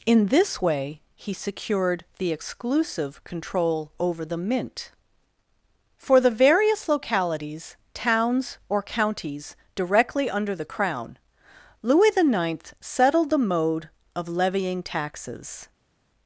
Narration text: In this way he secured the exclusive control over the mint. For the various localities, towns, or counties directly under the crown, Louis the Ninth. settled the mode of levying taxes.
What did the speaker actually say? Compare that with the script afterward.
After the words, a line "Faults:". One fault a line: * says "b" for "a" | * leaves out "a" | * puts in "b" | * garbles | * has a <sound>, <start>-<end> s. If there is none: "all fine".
In this way he secured the exclusive control over the mint. For the various localities, towns, or counties directly under the crown, Louis the Ninth. settled the mode of levying taxes.
Faults:
all fine